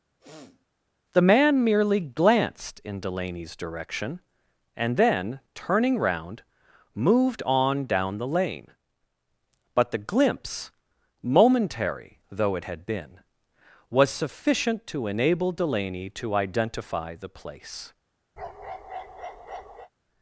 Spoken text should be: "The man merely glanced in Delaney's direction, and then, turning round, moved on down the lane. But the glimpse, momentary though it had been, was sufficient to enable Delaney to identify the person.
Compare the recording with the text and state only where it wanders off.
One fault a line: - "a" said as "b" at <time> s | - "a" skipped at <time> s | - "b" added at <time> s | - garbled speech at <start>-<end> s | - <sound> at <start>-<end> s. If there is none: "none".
- sniff at 0.2-0.6 s
- "person" said as "place" at 17.3 s
- bark at 18.4-19.9 s